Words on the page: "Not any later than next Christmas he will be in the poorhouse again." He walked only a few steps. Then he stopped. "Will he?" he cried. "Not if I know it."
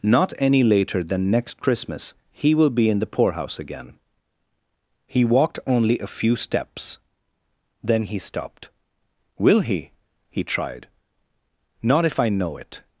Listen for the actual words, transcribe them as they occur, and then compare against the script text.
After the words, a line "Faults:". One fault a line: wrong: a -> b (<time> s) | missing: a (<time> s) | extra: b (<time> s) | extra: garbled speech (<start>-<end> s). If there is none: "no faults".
"Not any later than next Christmas he will be in the poorhouse again." He walked only a few steps. Then he stopped. "Will he?" he tried. "Not if I know it."
Faults:
wrong: cried -> tried (10.4 s)